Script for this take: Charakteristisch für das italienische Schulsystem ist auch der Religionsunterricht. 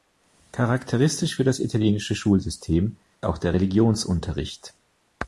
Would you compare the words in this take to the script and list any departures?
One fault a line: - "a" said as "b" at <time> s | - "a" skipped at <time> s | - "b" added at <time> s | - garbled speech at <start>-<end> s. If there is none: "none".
- "ist" skipped at 3.0 s